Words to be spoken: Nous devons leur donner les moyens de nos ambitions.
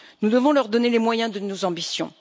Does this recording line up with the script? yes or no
yes